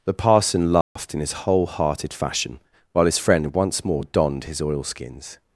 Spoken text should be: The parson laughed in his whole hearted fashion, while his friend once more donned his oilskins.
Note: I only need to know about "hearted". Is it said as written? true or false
true